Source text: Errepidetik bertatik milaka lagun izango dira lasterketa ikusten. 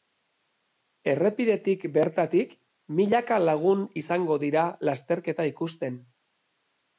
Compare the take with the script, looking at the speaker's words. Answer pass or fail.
pass